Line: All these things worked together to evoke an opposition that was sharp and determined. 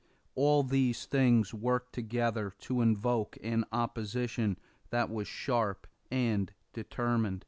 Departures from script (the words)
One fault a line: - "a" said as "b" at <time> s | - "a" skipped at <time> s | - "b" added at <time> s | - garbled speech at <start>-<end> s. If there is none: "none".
none